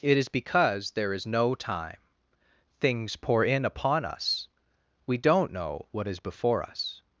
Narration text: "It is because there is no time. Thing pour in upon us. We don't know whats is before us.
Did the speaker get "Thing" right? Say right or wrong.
wrong